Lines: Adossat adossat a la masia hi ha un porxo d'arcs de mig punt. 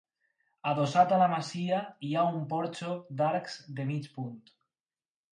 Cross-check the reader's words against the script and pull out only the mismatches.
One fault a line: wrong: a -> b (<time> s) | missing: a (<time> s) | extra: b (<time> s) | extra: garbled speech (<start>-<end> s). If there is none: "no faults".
missing: adossat (1.1 s)